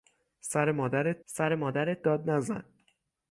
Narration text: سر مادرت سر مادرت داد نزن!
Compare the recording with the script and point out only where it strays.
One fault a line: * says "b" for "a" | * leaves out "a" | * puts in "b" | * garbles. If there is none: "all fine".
all fine